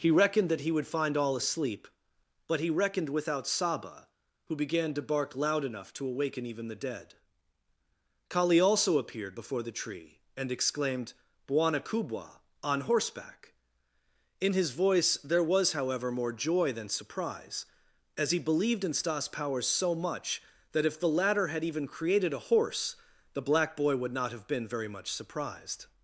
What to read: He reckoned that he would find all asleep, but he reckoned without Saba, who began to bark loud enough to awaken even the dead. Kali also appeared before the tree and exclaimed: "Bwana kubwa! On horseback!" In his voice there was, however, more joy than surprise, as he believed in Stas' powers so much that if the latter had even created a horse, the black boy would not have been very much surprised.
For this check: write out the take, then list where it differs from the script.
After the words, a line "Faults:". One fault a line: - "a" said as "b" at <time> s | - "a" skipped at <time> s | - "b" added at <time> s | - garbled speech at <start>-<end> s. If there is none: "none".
He reckoned that he would find all asleep, but he reckoned without Saba, who began to bark loud enough to awaken even the dead. Kali also appeared before the tree and exclaimed: "Bwana kubwa! On horseback!" In his voice there was, however, more joy than surprise, as he believed in Stas' powers so much that if the latter had even created a horse, the black boy would not have been very much surprised.
Faults:
none